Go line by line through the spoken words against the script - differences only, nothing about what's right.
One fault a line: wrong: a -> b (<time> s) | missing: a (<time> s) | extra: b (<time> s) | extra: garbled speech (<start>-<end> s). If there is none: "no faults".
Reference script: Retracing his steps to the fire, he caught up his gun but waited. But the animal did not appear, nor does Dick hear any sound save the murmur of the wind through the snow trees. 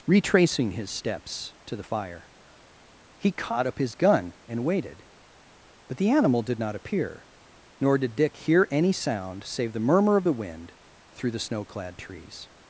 wrong: but -> and (4.5 s)
wrong: does -> did (8.0 s)
extra: clad (11.6 s)